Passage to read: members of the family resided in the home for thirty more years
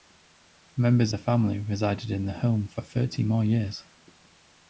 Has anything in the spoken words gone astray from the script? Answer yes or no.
yes